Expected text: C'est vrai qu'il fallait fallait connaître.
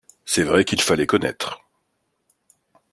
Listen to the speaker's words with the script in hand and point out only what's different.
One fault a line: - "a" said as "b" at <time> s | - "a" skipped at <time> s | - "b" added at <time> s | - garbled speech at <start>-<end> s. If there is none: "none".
- "fallait" skipped at 1.1 s